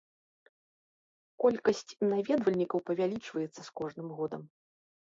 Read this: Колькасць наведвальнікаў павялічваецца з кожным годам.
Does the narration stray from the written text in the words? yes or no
no